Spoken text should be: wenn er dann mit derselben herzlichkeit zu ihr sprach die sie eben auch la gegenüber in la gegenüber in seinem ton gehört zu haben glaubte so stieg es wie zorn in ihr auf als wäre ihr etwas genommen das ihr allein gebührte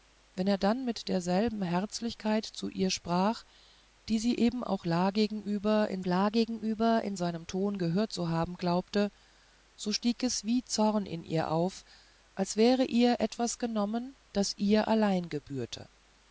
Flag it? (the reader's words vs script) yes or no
no